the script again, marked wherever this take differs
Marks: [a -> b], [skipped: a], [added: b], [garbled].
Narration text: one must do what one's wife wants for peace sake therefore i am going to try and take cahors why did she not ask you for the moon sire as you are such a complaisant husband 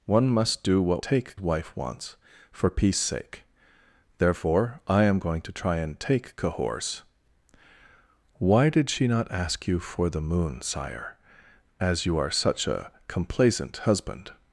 one must do what [one's -> take] wife wants for peace sake therefore i am going to try and take cahors why did she not ask you for the moon sire as you are such a complaisant husband